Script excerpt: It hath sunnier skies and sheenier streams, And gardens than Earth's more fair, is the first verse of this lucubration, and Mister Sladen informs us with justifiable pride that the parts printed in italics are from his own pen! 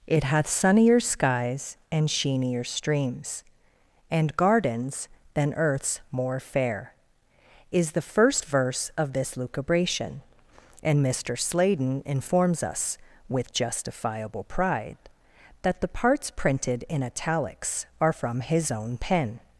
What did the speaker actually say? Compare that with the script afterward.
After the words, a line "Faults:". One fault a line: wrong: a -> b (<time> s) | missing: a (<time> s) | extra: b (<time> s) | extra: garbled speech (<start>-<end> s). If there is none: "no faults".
It hath sunnier skies and sheenier streams, And gardens than Earth's more fair, is the first verse of this lucubration, and Mister Sladen informs us with justifiable pride that the parts printed in italics are from his own pen!
Faults:
no faults